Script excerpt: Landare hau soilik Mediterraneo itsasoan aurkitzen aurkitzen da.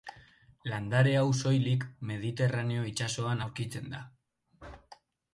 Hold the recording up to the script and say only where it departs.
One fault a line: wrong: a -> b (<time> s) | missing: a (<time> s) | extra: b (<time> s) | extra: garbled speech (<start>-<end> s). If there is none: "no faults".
missing: aurkitzen (3.9 s)